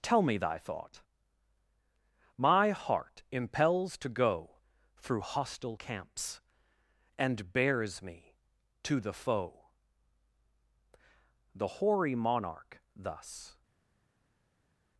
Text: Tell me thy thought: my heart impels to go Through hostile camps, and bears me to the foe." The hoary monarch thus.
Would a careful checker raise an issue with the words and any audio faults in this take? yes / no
no